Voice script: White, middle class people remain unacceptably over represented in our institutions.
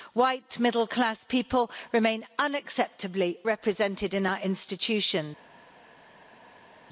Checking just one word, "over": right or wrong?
wrong